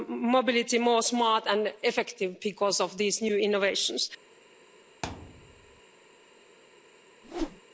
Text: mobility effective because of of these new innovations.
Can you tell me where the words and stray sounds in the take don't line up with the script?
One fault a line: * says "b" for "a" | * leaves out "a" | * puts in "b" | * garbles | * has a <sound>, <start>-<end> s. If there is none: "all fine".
* puts in "more smart and"
* leaves out "of"
* has a thud, 5.0-5.8 s
* has a whoosh, 7.2-7.6 s